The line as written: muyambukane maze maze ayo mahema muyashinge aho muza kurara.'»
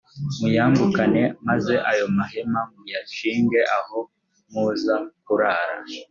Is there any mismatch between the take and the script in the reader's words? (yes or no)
yes